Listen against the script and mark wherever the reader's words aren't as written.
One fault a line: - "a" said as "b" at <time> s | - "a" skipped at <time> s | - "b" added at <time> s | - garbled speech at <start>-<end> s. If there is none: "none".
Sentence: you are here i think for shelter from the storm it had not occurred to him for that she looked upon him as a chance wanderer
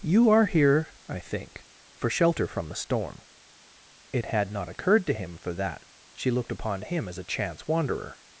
none